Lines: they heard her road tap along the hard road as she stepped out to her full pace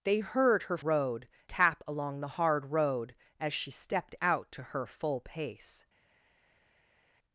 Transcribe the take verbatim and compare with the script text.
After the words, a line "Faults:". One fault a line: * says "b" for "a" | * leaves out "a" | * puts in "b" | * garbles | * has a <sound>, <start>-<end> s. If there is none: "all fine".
they heard her road tap along the hard road as she stepped out to her full pace
Faults:
all fine